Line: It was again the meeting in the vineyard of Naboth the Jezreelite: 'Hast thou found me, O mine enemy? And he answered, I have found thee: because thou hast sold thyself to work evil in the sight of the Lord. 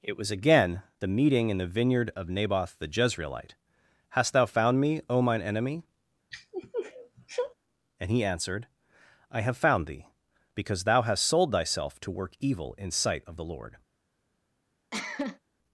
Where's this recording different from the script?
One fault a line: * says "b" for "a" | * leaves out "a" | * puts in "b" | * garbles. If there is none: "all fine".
* leaves out "the"